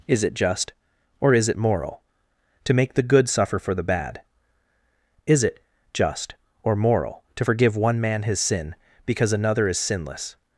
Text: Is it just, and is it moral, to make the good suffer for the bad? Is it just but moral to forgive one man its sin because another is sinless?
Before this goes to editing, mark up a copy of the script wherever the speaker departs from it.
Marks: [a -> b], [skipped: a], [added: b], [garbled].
Is it just, [and -> or] is it moral, to make the good suffer for the bad? Is it just [but -> or] moral to forgive one man [its -> his] sin because another is sinless?